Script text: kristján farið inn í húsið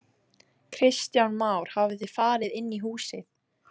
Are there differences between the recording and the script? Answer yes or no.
yes